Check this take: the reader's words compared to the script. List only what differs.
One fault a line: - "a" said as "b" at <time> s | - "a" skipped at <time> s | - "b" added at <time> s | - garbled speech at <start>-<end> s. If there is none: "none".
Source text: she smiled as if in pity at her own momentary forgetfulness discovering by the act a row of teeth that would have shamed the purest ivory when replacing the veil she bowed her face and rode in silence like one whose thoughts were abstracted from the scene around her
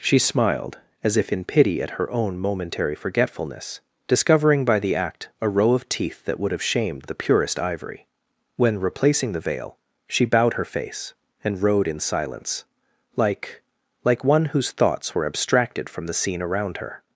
- "like" added at 14.0 s